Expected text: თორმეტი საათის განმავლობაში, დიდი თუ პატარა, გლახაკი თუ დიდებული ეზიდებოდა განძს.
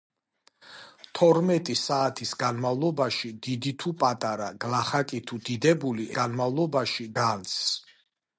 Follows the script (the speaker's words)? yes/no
no